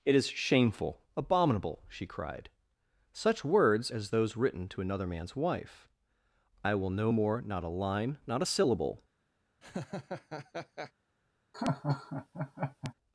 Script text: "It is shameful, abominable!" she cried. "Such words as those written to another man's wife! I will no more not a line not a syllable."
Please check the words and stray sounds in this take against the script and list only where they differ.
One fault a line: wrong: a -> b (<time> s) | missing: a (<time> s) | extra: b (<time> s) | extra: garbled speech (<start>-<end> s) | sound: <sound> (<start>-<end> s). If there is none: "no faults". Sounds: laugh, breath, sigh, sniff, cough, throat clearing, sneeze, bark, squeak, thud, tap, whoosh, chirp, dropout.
sound: laugh (9.6-10.9 s)
sound: laugh (11.5-12.9 s)